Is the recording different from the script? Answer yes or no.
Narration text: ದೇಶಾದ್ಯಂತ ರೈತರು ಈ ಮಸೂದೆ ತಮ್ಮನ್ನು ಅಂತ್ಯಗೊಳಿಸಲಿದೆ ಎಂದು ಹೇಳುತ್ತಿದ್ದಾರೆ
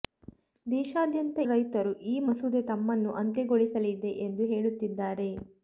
no